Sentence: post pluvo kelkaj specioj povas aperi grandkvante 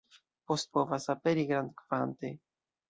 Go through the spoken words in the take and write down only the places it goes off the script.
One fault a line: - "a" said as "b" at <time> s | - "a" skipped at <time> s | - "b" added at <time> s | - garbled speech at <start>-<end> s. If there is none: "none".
- "pluvo kelkaj specioj" skipped at 0.7 s